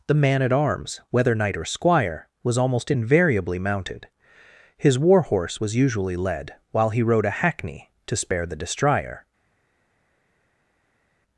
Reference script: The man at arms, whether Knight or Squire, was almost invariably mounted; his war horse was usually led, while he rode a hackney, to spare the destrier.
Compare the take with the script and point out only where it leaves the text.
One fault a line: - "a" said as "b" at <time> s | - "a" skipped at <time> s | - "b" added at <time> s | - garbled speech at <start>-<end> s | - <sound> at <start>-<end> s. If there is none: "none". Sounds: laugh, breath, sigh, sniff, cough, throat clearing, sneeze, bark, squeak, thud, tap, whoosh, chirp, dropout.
none